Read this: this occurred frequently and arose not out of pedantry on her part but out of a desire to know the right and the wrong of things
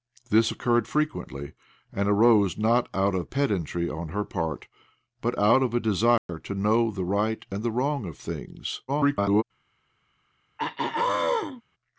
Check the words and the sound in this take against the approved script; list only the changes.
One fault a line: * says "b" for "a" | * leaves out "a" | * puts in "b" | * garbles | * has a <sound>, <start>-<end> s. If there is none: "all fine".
* has a dropout, 6.2-6.3 s
* garbles
* has a throat clearing, 10.6-11.6 s